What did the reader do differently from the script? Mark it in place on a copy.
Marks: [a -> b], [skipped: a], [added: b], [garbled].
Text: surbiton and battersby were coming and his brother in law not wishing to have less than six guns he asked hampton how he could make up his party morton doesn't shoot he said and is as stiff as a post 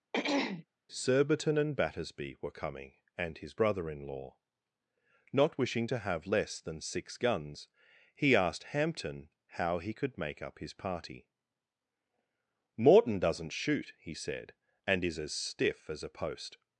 surbiton and battersby were coming and his brother in law not wishing to have less than six guns he asked hampton how he could make up his party morton doesn't shoot he said and is as stiff as a post